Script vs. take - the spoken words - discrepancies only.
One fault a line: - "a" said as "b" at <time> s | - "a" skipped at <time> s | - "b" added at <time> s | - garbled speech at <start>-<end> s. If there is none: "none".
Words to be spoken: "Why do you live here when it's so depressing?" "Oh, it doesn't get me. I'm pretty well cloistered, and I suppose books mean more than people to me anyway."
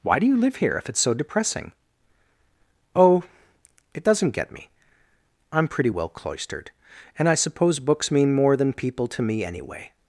- "when" said as "if" at 0.8 s